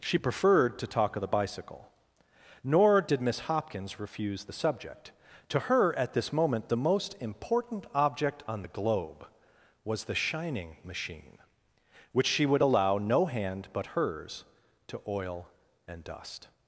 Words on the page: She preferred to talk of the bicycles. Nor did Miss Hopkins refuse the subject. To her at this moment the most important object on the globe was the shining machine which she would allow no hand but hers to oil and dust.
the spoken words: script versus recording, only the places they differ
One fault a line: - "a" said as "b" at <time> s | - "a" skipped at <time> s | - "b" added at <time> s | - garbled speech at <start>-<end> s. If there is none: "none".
- "bicycles" said as "bicycle" at 1.3 s